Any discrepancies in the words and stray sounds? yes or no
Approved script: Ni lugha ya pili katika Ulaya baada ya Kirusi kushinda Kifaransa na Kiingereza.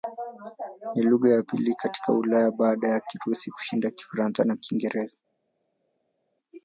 no